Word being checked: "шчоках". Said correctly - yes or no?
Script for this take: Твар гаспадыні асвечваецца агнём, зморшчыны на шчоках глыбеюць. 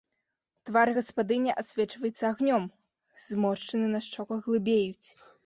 yes